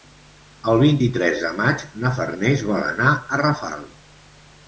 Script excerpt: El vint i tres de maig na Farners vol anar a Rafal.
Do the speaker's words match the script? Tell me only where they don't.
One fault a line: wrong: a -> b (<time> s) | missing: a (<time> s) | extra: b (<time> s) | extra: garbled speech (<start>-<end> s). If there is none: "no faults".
no faults